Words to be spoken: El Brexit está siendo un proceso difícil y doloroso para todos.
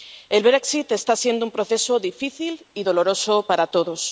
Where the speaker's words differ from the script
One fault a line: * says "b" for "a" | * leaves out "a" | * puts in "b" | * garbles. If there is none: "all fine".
all fine